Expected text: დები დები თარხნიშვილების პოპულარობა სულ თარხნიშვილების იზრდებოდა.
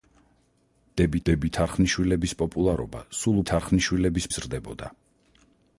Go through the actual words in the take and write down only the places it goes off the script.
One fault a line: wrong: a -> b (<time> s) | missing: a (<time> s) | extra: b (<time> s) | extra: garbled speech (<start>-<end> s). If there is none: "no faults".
no faults